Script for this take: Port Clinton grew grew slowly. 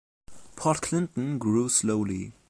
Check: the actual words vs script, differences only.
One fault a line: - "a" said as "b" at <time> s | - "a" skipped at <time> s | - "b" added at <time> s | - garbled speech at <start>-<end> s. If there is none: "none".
- "grew" skipped at 1.7 s